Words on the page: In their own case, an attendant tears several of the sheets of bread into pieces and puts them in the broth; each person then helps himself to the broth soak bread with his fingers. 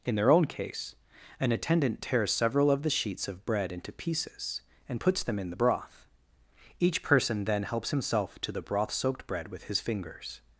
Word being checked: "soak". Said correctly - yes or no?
no